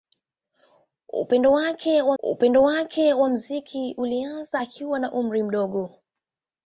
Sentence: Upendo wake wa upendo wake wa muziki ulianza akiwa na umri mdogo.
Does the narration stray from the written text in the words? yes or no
no